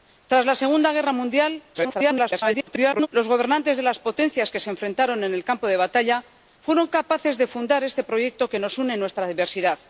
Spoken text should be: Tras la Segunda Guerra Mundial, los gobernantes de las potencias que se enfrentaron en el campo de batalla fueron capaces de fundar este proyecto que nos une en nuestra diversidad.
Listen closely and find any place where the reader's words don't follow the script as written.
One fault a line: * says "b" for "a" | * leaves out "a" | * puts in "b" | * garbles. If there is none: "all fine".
* garbles